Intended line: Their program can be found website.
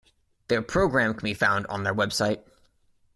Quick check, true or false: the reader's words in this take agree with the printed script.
false